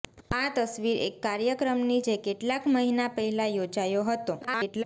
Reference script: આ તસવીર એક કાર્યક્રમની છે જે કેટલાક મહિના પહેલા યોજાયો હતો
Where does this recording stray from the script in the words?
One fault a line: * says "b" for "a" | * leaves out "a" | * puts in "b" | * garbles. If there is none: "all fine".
* leaves out "છે"
* garbles